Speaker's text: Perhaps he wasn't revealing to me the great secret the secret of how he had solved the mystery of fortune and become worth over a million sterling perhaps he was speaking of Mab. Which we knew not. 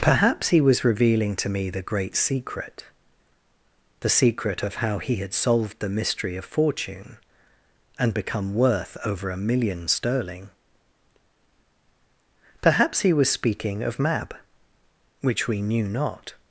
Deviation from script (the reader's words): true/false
true